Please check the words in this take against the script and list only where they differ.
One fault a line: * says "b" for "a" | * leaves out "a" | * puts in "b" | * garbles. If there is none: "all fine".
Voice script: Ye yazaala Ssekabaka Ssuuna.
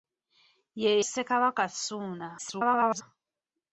* leaves out "yazaala"
* garbles